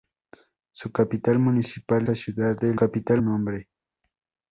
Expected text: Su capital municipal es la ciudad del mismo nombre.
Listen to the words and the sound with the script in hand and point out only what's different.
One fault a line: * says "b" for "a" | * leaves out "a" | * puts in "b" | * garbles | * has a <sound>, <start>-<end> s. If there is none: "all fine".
* leaves out "es"
* says "capital" for "mismo"